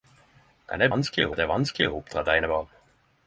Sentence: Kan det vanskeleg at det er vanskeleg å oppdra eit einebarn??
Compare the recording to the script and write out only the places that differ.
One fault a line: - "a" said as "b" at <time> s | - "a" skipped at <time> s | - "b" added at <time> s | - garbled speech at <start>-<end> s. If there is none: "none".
none